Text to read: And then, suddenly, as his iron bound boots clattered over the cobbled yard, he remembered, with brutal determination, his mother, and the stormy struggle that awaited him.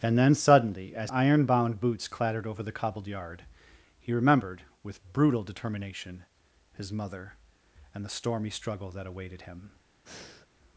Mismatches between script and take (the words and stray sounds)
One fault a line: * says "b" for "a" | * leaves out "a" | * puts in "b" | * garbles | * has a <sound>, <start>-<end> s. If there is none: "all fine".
* leaves out "his"
* has a breath, 10.1-10.5 s